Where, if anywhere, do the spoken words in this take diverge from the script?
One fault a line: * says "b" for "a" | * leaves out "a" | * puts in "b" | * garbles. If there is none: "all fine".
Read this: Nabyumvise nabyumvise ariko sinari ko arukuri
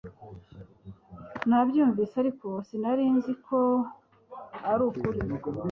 * leaves out "nabyumvise"
* puts in "nzi"